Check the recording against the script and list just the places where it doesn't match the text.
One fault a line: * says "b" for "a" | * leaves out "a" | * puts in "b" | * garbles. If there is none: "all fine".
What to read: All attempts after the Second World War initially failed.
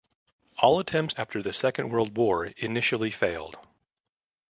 all fine